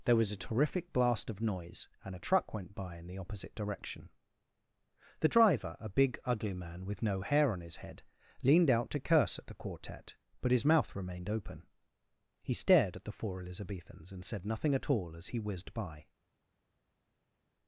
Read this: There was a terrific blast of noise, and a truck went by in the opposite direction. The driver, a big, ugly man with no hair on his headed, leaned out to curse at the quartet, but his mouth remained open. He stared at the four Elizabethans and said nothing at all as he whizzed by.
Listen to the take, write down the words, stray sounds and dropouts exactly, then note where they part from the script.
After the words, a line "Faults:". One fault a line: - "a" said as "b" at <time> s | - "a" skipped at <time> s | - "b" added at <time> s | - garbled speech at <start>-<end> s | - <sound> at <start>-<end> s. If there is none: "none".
There was a terrific blast of noise, and a truck went by in the opposite direction. The driver, a big, ugly man with no hair on his head, leaned out to curse at the quartet, but his mouth remained open. He stared at the four Elizabethans and said nothing at all as he whizzed by.
Faults:
- "headed" said as "head" at 7.8 s